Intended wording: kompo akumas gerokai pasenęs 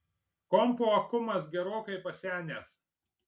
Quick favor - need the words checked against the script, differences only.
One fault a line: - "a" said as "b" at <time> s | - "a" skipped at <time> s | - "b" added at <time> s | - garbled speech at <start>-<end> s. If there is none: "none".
none